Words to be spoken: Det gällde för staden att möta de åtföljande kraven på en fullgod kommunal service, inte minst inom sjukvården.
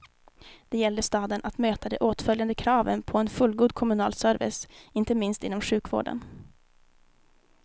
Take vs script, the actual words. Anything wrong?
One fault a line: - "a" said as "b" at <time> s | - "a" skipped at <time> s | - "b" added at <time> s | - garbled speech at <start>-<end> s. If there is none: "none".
- "för" skipped at 1.0 s